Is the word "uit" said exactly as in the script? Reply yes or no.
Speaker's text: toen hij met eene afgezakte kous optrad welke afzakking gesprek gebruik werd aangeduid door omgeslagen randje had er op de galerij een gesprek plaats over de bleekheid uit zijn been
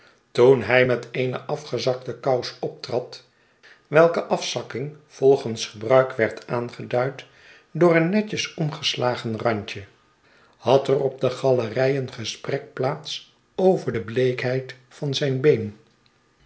no